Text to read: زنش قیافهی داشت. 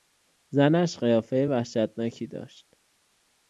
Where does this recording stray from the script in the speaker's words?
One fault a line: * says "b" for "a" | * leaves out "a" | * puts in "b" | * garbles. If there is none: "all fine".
* puts in "وحشتناکی"